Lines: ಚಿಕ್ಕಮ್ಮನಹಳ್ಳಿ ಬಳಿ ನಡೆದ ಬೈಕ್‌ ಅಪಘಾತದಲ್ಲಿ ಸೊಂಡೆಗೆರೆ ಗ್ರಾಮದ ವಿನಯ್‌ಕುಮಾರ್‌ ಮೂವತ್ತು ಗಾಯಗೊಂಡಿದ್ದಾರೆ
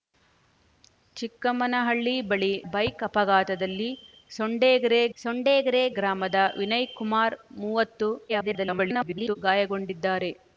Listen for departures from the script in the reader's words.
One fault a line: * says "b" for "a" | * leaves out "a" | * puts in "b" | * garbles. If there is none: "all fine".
* leaves out "ನಡೆದ"
* puts in "ಸೊಂಡೆಗೆರೆ"
* garbles